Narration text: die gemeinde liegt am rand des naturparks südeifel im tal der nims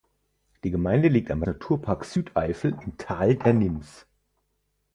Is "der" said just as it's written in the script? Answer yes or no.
yes